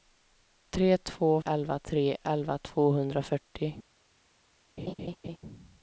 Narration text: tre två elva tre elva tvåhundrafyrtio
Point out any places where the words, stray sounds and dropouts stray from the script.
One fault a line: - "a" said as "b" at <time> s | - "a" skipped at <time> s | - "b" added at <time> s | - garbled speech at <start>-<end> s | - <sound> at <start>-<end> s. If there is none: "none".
- laugh at 4.8-5.4 s